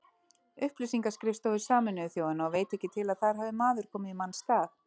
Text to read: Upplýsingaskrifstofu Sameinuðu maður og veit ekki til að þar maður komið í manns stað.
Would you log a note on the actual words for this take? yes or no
yes